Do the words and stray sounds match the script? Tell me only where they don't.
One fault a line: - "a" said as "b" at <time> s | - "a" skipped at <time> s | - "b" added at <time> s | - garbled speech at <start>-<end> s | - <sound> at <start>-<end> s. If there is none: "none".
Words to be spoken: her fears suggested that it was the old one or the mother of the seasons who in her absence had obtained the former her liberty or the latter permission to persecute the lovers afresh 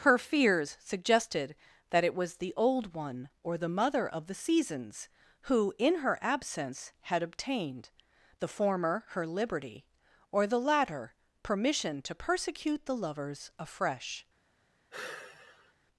- sigh at 14.9-15.7 s